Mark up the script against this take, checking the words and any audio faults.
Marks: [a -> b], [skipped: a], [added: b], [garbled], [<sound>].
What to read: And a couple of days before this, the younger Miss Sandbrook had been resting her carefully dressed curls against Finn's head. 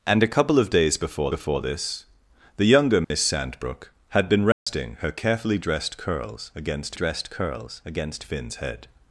And a couple of days before [added: before] this, the younger Miss [dropout] Sandbrook had been resting [dropout] her carefully dressed curls against [added: dressed curls against] Finn's head.